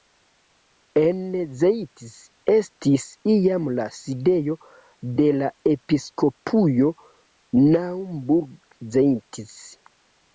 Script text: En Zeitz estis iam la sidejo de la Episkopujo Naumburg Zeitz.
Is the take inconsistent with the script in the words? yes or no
no